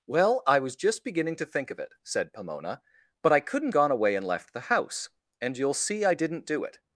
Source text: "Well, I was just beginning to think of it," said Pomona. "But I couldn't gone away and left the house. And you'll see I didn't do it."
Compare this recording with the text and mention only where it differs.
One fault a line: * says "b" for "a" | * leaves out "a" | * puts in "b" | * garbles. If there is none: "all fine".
all fine